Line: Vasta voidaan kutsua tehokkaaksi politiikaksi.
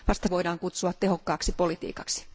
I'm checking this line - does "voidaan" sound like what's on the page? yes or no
yes